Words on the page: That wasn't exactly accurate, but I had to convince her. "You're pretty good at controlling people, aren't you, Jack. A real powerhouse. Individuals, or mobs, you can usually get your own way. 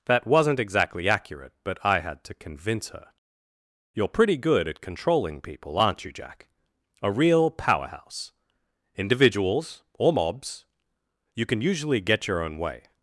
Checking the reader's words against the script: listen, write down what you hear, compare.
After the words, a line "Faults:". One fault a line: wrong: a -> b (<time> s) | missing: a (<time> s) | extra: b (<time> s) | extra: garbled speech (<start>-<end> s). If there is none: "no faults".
That wasn't exactly accurate, but I had to convince her. "You're pretty good at controlling people, aren't you, Jack. A real powerhouse. Individuals, or mobs, you can usually get your own way.
Faults:
no faults